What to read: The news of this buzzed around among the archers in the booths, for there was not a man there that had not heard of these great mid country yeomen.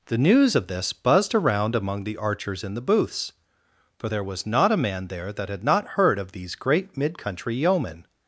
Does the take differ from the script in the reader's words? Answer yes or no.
no